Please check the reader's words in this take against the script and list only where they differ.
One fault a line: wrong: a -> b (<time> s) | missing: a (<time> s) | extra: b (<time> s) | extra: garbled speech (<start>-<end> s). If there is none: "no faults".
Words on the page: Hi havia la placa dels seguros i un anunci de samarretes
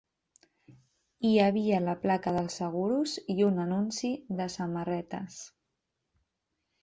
no faults